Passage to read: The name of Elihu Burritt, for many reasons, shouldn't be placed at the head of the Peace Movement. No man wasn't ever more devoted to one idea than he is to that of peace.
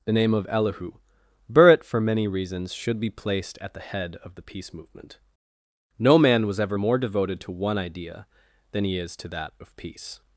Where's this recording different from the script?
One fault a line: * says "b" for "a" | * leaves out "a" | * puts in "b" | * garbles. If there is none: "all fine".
* says "should" for "shouldn't"
* says "was" for "wasn't"